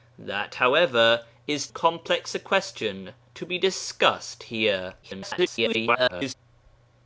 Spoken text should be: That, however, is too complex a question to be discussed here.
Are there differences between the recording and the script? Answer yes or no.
yes